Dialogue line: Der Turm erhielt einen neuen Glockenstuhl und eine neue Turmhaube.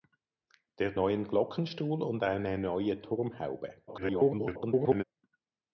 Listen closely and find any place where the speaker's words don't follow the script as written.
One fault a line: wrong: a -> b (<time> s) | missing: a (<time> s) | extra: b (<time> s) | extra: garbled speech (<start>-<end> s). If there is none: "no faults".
missing: Turm erhielt einen (0.9 s)
extra: garbled speech (3.9-5.0 s)